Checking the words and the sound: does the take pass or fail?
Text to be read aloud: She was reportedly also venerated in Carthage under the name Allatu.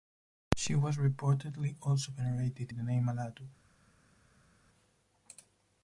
fail